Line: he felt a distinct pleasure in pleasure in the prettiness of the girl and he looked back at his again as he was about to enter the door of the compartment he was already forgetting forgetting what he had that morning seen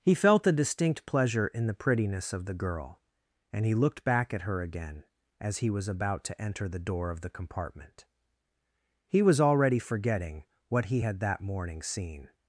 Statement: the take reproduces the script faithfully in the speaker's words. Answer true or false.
false